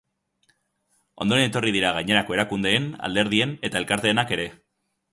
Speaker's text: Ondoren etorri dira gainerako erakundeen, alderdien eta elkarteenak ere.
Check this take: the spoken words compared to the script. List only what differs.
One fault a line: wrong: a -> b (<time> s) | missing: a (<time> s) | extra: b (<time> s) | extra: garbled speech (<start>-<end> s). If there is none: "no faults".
no faults